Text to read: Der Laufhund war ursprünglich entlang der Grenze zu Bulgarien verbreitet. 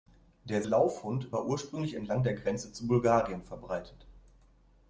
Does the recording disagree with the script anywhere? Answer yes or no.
no